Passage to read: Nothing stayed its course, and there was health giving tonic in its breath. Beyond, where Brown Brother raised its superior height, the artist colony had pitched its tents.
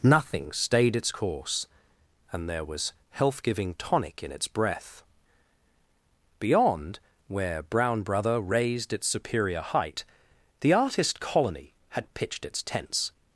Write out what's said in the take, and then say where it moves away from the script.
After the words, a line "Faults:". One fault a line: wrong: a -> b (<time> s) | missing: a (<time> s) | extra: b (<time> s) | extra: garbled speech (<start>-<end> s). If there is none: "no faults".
Nothing stayed its course, and there was health giving tonic in its breath. Beyond, where Brown Brother raised its superior height, the artist colony had pitched its tents.
Faults:
no faults